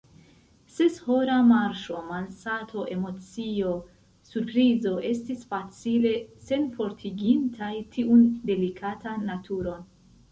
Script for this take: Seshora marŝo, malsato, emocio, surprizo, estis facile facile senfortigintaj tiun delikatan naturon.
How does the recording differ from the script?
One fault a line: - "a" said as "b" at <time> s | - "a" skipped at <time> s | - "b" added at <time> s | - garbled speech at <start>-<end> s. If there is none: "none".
- "facile" skipped at 6.1 s